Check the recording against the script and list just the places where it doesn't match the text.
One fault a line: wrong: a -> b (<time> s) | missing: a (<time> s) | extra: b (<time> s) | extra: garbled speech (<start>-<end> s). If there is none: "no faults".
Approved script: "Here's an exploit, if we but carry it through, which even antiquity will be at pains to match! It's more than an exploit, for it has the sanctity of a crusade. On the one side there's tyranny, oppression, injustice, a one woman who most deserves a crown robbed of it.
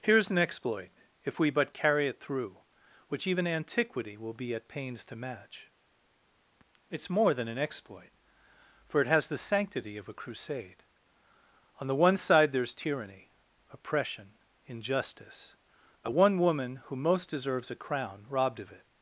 no faults